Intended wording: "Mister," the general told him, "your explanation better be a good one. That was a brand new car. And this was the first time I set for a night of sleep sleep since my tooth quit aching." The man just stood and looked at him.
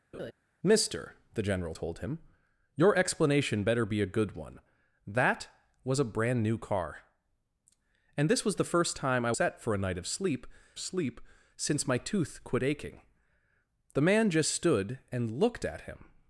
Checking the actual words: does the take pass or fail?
pass